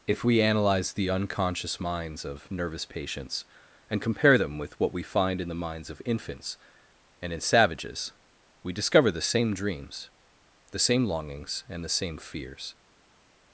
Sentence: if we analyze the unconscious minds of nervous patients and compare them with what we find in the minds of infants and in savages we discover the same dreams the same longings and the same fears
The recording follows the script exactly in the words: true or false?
true